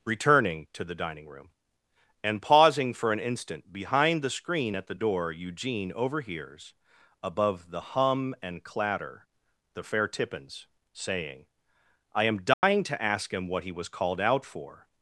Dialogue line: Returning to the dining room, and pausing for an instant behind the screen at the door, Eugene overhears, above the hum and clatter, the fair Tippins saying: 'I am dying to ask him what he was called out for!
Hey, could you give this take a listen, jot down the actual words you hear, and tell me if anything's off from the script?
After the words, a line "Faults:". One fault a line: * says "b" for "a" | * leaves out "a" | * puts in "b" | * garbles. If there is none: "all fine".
Returning to the dining room, and pausing for an instant behind the screen at the door, Eugene overhears, above the hum and clatter, the fair Tippins saying: 'I am dying to ask him what he was called out for!
Faults:
all fine